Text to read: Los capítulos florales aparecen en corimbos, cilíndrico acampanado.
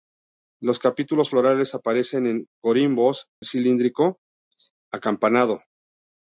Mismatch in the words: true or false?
false